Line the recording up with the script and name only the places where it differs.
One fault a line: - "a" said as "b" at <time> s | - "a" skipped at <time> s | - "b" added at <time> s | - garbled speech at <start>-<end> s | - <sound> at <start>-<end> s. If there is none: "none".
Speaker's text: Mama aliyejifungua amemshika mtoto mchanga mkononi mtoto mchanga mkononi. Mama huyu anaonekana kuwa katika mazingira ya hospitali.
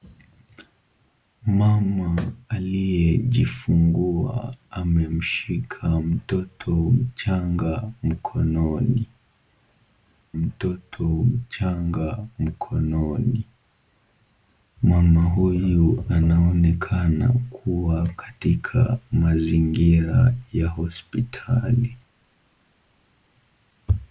none